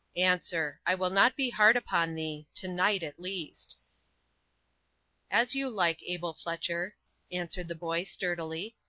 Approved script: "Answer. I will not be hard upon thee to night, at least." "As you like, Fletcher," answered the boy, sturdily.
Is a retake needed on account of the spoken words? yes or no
yes